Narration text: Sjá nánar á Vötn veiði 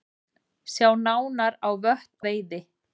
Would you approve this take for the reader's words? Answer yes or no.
yes